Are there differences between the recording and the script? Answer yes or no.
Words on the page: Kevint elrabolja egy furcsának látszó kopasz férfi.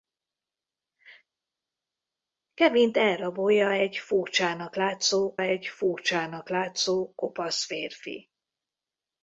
yes